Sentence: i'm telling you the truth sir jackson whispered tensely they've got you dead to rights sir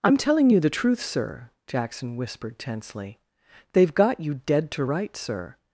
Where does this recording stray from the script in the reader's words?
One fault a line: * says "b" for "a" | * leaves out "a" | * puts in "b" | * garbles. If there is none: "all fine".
all fine